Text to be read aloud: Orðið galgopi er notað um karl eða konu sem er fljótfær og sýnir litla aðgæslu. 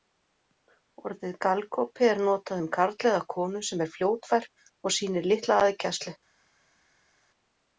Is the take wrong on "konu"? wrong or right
right